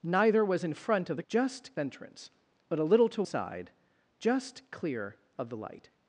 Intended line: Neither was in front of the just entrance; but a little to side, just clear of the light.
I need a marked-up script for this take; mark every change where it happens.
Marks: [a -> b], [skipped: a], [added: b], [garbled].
Neither was in front of the just entrance; but a little to side, just clear of the light.